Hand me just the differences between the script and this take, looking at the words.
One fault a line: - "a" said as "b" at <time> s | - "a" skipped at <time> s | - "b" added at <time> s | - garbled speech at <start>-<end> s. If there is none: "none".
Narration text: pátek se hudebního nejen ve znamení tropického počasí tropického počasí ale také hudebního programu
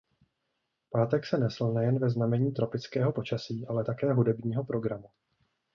- "hudebního" said as "nesl" at 1.4 s
- "tropického počasí" skipped at 3.7 s